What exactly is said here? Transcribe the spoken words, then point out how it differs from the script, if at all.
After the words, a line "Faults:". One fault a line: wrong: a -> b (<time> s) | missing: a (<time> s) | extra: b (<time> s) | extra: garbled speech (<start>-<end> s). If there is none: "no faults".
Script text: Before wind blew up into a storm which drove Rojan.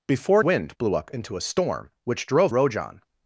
Before wind blew up into a storm which drove Rojan.
Faults:
no faults